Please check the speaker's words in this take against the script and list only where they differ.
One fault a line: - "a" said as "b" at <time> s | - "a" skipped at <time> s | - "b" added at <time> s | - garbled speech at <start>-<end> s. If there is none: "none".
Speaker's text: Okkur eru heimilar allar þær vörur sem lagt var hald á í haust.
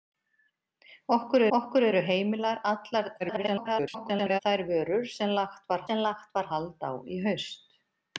- "okkur" added at 1.6 s
- garbled speech at 3.2-4.4 s
- "sem lagt var" added at 5.9 s